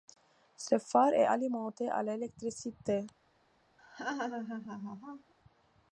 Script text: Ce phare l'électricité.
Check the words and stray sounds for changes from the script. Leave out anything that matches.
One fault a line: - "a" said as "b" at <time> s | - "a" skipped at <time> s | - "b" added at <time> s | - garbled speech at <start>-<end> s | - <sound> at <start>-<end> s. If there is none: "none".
- "est alimenté à" added at 1.1 s
- laugh at 3.8-5.3 s